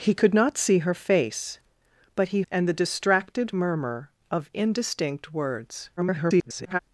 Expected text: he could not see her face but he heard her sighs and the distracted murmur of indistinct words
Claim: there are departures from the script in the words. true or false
true